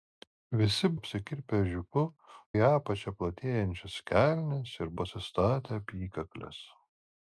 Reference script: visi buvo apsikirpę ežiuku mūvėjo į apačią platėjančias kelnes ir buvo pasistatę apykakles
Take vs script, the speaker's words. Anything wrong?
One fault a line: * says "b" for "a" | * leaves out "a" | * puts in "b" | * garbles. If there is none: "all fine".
* leaves out "buvo"
* leaves out "mūvėjo"
* leaves out "buvo"